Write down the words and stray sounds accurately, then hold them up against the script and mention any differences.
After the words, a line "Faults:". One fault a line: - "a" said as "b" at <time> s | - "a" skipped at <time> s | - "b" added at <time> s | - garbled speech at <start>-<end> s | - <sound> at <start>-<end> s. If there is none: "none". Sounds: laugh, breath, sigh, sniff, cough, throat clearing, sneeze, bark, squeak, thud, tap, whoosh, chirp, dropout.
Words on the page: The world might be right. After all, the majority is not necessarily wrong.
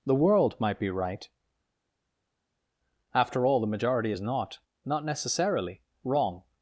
The world might be right. After all, the majority is not not necessarily wrong.
Faults:
- "not" added at 4.9 s